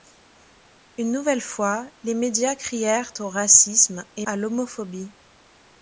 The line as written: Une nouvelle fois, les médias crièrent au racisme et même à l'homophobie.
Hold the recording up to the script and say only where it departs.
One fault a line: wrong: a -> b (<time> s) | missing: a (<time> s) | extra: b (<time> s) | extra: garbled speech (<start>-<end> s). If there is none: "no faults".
missing: même (4.3 s)